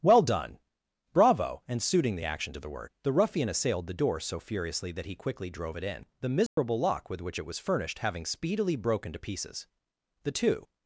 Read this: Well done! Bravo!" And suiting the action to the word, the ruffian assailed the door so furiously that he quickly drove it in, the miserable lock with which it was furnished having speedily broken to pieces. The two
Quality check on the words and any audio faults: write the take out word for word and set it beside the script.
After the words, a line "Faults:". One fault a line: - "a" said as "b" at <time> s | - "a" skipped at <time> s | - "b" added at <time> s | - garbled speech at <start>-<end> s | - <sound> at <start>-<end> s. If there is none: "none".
Well done! Bravo!" And suiting the action to the word, the ruffian assailed the door so furiously that he quickly drove it in, the miserable lock with which it was furnished having speedily broken to pieces. The two
Faults:
- dropout at 6.5-6.6 s